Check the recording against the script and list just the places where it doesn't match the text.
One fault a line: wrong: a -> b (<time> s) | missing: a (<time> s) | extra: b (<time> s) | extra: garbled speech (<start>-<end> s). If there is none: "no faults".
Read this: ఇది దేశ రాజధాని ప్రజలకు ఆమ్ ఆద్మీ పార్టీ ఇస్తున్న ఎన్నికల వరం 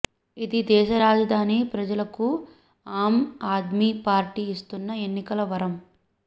no faults